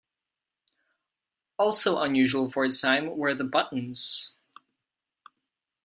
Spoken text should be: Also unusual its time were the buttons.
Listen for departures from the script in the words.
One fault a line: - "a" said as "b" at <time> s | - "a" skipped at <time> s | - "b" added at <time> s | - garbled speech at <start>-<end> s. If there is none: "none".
- "for" added at 2.5 s